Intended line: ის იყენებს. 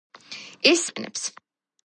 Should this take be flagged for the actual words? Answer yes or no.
no